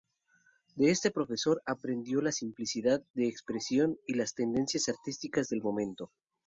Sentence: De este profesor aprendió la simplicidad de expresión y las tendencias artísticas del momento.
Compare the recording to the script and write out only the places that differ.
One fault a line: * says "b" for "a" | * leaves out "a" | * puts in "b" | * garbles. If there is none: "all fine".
all fine